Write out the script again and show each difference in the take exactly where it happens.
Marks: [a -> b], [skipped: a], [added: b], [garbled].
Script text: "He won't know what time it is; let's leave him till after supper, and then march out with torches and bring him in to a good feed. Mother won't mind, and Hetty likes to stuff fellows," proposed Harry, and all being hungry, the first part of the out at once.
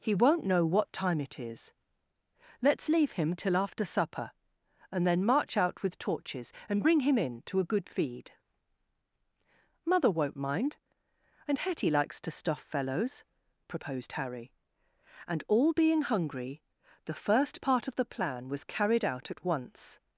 "He won't know what time it is; let's leave him till after supper, and then march out with torches and bring him in to a good feed. Mother won't mind, and Hetty likes to stuff fellows," proposed Harry, and all being hungry, the first part of the [added: plan was carried] out at once.